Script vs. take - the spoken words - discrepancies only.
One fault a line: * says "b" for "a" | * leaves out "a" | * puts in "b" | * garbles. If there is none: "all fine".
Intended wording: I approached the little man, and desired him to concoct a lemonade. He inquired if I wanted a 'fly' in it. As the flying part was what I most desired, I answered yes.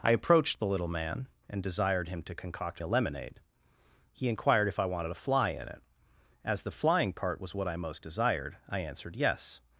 all fine